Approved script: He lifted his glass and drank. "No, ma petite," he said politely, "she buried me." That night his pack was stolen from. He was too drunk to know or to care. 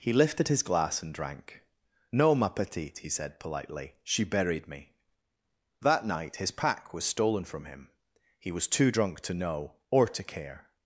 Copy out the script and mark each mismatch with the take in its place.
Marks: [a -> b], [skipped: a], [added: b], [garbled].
He lifted his glass and drank. "No, ma petite," he said politely, "she buried me." That night his pack was stolen from. [added: him] He was too drunk to know or to care.